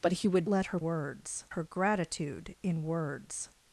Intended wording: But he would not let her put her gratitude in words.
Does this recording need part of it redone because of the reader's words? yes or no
yes